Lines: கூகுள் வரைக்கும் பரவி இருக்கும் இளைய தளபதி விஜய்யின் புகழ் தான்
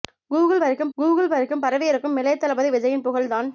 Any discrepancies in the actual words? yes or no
yes